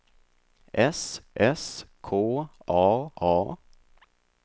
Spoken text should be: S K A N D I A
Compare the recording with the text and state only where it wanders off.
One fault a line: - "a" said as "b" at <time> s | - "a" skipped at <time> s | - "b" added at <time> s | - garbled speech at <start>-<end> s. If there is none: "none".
- "s" added at 1.3 s
- "N D I" skipped at 3.1 s